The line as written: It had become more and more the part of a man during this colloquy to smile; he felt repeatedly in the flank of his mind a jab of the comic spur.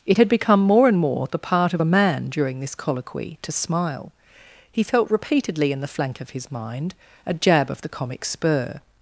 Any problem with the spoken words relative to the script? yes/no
no